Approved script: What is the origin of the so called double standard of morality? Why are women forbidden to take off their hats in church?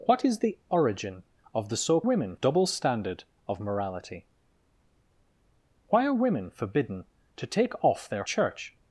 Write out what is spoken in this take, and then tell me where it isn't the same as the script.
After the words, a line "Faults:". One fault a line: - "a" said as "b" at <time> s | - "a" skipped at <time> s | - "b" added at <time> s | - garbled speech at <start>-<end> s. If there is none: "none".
What is the origin of the so women double standard of morality? Why are women forbidden to take off their church?
Faults:
- "called" said as "women" at 2.0 s
- "hats in" skipped at 8.2 s